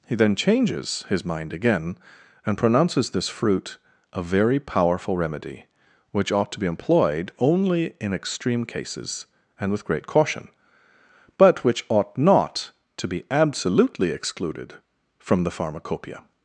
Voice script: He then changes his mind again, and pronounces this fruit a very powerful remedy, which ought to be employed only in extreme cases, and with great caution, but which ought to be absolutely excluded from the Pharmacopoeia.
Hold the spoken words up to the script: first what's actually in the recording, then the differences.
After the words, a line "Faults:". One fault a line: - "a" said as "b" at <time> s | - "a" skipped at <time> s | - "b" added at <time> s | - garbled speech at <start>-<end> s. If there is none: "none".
He then changes his mind again, and pronounces this fruit a very powerful remedy, which ought to be employed only in extreme cases, and with great caution, but which ought not to be absolutely excluded from the Pharmacopoeia.
Faults:
- "not" added at 12.2 s